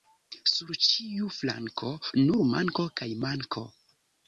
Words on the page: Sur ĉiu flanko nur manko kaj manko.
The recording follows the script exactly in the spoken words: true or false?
true